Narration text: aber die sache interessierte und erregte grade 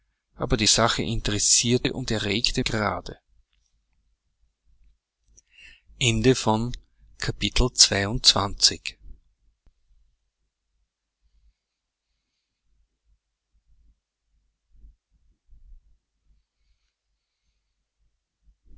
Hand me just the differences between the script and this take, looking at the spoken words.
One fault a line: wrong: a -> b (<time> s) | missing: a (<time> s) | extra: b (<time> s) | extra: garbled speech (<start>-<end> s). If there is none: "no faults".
no faults